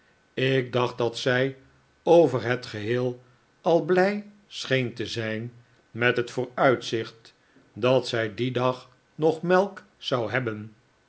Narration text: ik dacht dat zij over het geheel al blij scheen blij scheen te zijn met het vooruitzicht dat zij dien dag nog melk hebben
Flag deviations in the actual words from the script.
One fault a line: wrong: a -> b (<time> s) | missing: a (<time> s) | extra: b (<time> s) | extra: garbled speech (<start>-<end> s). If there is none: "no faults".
missing: blij scheen (4.9 s)
extra: zou (10.0 s)